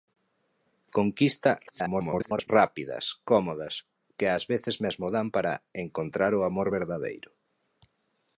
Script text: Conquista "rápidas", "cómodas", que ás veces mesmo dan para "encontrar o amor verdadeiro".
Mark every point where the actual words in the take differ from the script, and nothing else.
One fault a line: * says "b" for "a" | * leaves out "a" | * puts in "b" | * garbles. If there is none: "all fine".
* garbles